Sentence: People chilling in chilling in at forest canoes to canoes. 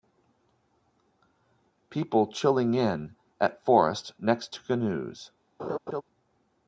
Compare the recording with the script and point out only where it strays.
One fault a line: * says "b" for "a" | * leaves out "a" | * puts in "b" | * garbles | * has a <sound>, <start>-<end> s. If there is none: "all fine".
* leaves out "chilling in"
* says "next" for "canoes"
* has a laugh, 5.6-6.0 s